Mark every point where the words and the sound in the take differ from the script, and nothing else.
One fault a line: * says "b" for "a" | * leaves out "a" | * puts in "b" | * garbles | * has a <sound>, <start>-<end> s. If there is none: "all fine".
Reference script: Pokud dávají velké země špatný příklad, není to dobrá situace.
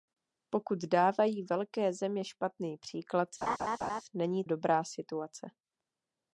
* has a laugh, 3.4-4.0 s
* leaves out "to"